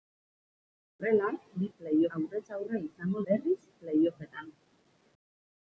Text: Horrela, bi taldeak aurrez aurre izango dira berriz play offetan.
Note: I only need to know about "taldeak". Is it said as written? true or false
false